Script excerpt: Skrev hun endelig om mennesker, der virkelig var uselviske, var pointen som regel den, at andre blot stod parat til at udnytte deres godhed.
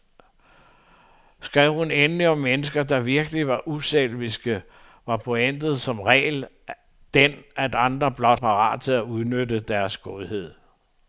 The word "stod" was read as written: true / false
false